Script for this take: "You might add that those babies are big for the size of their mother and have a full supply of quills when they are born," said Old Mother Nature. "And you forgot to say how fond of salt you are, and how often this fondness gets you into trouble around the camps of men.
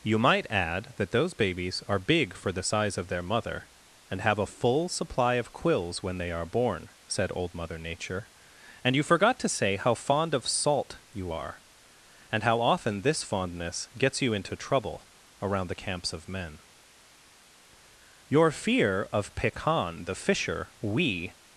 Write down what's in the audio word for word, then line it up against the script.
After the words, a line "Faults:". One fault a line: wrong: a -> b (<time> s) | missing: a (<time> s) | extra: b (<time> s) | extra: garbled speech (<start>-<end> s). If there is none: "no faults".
"You might add that those babies are big for the size of their mother and have a full supply of quills when they are born," said Old Mother Nature. "And you forgot to say how fond of salt you are, and how often this fondness gets you into trouble around the camps of men. Your fear of Pekan the Fisher we
Faults:
extra: Your fear of Pekan the Fisher we (18.3 s)